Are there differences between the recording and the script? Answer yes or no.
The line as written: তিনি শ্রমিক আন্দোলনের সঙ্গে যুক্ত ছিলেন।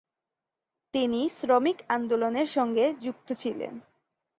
no